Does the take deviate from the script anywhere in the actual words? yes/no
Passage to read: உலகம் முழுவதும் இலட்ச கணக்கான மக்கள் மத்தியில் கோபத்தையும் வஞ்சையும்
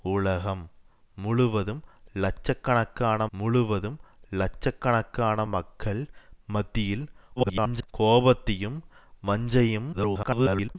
yes